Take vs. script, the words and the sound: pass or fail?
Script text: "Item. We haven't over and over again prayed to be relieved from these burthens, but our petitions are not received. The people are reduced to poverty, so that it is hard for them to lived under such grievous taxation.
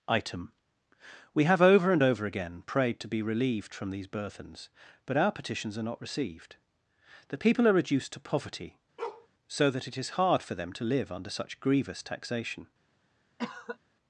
fail